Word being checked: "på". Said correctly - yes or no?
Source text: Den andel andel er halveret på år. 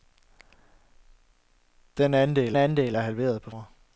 yes